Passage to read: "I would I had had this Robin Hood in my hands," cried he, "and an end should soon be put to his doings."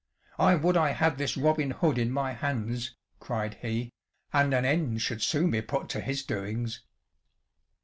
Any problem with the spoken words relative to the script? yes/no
yes